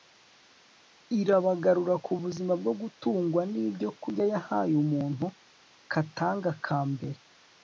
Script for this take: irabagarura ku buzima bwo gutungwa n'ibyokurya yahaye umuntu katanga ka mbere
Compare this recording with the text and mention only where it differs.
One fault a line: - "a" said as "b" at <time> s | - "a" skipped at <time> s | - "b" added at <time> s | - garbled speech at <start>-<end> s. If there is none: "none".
none